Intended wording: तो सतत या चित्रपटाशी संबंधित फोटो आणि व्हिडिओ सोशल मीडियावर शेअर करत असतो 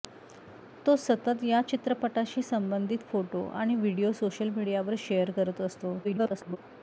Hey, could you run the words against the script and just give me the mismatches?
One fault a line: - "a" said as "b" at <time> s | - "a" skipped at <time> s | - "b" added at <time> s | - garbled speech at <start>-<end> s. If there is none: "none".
- garbled speech at 6.0-6.6 s